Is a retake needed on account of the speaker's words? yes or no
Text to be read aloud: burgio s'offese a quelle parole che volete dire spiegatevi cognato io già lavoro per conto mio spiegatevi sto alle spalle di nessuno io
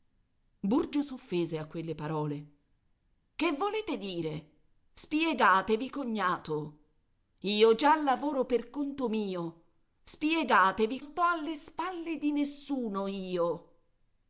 no